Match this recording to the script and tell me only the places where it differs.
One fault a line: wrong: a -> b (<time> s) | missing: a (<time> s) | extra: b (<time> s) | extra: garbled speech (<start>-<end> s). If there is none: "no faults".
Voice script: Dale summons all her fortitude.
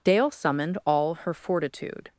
wrong: summons -> summoned (0.3 s)